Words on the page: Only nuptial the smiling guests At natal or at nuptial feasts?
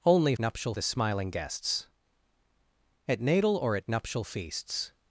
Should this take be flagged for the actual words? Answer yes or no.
no